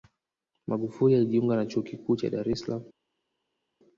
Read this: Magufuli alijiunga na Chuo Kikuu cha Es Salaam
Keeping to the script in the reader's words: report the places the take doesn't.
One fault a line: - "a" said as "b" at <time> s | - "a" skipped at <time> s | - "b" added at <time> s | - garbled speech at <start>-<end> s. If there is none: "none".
- "Dar" added at 2.3 s